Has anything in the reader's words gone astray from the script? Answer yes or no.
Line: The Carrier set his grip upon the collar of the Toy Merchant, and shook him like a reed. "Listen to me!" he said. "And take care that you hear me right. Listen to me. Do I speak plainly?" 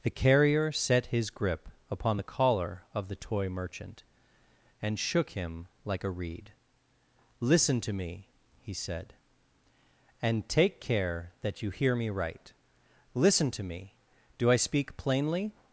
no